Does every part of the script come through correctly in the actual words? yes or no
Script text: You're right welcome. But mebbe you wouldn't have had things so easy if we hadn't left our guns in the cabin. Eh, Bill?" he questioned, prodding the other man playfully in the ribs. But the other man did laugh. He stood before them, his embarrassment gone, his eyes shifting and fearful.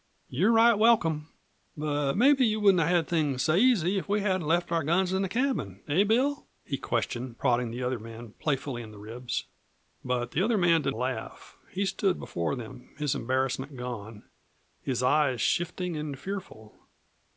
yes